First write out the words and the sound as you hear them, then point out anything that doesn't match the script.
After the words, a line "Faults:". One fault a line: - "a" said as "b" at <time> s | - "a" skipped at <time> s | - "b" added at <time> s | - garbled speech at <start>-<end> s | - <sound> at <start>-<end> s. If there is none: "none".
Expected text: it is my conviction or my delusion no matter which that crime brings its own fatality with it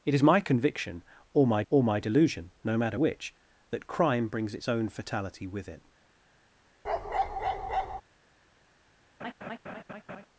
it is my conviction or my or my delusion no matter which that crime brings its own fatality with it
Faults:
- "or my" added at 1.7 s
- bark at 6.8-8.0 s
- laugh at 9.2-10.3 s